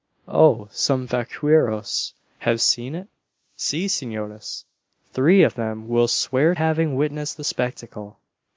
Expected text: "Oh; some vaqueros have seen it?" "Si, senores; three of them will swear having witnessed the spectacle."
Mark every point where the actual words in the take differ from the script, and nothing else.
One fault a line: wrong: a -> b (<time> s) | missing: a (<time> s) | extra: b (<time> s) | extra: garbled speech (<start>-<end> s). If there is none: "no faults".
no faults